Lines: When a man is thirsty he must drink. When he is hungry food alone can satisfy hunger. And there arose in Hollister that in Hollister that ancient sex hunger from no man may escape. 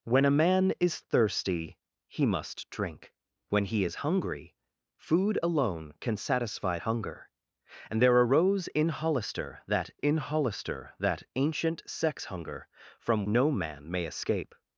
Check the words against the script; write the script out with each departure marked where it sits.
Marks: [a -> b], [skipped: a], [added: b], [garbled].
When a man is thirsty he must drink. When he is hungry food alone can satisfy hunger. And there arose in Hollister that in Hollister that ancient sex hunger from no man may escape.